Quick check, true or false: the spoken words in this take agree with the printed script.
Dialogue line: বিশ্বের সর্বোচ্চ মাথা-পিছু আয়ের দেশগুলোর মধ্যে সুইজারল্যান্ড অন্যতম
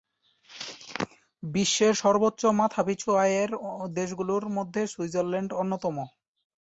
true